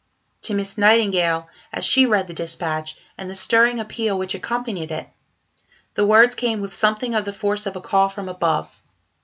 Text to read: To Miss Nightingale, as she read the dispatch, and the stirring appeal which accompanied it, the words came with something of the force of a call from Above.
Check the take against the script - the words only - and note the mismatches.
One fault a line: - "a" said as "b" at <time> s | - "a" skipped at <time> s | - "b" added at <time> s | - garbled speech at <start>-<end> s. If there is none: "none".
none